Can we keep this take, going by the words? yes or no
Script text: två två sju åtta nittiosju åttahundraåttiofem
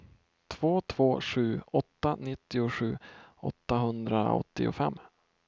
yes